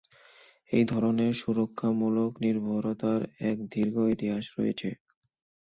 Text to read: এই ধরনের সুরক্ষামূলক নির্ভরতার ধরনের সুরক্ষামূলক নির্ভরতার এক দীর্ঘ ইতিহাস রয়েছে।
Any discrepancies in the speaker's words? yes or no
yes